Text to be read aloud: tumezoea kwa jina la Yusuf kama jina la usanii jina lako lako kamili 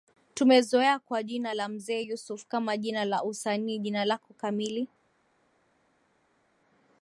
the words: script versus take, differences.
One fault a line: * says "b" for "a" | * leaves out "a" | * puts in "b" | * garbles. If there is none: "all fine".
* puts in "Mzee"
* leaves out "lako"